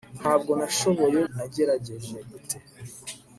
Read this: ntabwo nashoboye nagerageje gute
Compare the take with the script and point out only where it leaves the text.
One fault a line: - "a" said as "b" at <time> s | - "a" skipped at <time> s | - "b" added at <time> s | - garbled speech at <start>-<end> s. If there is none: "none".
none